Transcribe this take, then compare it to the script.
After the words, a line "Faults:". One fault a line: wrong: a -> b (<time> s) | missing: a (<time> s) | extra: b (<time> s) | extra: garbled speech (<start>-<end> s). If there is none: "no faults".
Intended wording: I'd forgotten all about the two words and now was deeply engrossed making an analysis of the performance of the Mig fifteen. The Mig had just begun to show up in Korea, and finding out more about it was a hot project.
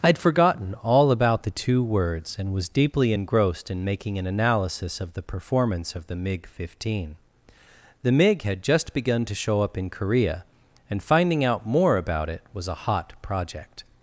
I'd forgotten all about the two words and was deeply engrossed in making an analysis of the performance of the Mig fifteen. The Mig had just begun to show up in Korea, and finding out more about it was a hot project.
Faults:
missing: now (2.5 s)
extra: in (3.7 s)